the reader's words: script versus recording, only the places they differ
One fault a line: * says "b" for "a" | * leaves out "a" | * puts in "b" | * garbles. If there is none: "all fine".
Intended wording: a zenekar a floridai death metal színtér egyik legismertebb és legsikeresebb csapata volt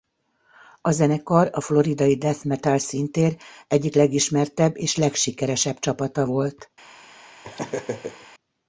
all fine